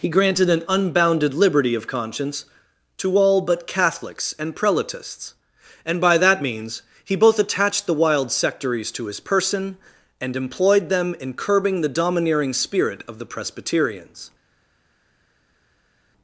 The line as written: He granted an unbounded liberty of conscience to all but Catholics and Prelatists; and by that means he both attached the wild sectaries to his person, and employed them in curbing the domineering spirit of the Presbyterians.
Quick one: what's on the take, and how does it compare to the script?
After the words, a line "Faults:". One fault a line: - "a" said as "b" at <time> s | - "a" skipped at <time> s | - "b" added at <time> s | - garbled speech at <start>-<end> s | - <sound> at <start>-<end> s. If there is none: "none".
He granted an unbounded liberty of conscience to all but Catholics and Prelatists; and by that means he both attached the wild sectaries to his person, and employed them in curbing the domineering spirit of the Presbyterians.
Faults:
none